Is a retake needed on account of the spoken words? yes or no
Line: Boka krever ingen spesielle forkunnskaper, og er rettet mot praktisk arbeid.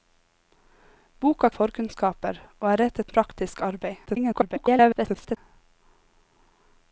yes